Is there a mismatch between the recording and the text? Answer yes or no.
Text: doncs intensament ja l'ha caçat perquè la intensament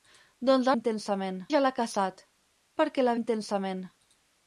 no